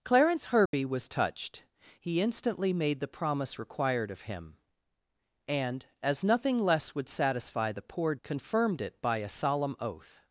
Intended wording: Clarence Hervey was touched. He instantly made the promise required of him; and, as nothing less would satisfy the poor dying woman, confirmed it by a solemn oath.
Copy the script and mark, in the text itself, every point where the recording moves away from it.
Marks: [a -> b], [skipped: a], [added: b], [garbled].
Clarence Hervey was touched. He instantly made the promise required of him; and, as nothing less would satisfy the poor [skipped: dying woman,] confirmed it by a solemn oath.